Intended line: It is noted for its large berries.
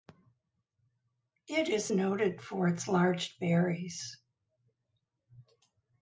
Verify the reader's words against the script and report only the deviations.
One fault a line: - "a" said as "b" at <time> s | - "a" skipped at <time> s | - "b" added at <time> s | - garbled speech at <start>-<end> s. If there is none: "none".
none